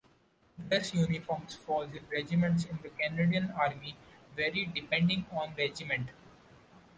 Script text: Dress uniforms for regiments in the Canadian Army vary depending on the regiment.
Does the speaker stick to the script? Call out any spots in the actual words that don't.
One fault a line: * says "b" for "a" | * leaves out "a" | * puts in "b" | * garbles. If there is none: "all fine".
* leaves out "the"